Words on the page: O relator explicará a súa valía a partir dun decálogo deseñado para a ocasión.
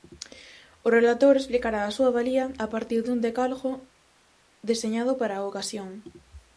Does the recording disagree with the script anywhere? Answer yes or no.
no